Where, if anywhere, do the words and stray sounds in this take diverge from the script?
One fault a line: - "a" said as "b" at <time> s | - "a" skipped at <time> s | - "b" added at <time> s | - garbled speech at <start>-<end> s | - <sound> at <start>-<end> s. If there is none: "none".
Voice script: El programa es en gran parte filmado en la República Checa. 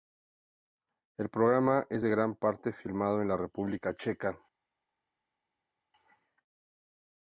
none